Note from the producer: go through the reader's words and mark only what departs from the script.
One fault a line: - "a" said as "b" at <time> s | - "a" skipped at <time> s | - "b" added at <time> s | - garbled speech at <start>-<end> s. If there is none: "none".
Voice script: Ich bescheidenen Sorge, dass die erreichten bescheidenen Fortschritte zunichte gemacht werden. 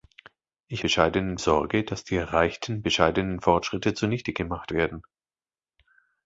none